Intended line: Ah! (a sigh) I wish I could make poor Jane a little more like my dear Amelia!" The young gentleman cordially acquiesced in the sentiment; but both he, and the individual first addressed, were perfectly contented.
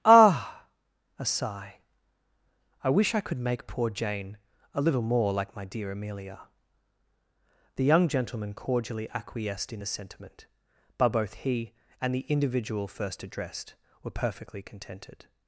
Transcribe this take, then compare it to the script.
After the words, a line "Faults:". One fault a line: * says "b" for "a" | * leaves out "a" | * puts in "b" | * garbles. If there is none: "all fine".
Ah! (a sigh) I wish I could make poor Jane a little more like my dear Amelia!" The young gentleman cordially acquiesced in the sentiment; but both he, and the individual first addressed, were perfectly contented.
Faults:
all fine